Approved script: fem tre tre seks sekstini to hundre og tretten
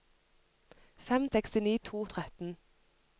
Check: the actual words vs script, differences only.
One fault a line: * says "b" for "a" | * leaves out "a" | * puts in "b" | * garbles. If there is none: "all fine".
* leaves out "tre tre seks"
* leaves out "hundre"